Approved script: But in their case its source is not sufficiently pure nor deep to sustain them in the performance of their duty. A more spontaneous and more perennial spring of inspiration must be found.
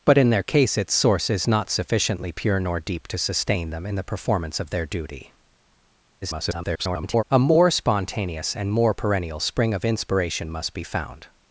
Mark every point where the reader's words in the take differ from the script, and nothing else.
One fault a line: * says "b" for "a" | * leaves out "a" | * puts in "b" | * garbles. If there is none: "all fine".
* garbles